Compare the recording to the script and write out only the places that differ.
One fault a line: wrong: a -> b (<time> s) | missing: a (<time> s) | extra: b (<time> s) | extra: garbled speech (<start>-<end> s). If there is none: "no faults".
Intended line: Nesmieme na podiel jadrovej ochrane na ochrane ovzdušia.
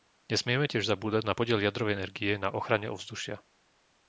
extra: tiež zabúdať (0.6 s)
wrong: ochrane -> energie (1.9 s)